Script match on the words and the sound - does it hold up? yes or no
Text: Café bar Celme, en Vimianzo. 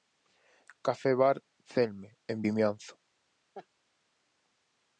no